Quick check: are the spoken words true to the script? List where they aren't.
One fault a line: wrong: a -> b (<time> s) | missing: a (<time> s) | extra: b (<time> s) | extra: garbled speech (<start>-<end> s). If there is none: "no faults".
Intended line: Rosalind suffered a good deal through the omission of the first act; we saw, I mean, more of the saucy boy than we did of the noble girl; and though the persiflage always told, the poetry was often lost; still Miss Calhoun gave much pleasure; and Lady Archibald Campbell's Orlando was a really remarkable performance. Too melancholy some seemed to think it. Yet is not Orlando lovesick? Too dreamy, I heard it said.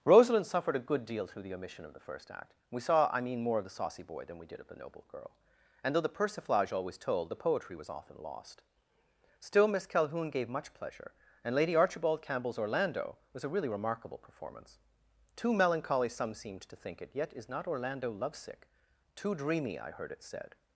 no faults